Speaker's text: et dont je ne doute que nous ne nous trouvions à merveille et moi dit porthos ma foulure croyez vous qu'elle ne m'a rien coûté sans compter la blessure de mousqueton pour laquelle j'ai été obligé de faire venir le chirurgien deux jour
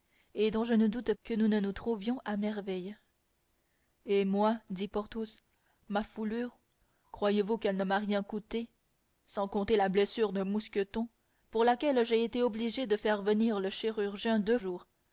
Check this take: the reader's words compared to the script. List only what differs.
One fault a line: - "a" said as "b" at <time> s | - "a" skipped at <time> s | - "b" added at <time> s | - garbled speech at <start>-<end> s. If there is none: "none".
none